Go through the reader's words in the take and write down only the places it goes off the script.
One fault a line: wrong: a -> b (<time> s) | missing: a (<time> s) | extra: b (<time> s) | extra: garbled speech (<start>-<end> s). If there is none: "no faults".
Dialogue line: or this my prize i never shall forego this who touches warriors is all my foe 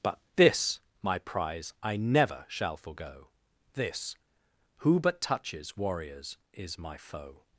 wrong: or -> but (0.0 s)
extra: but (5.0 s)
missing: all (6.8 s)